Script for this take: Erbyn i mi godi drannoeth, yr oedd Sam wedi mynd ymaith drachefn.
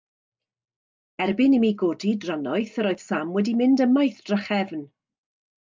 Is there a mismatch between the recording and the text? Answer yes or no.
no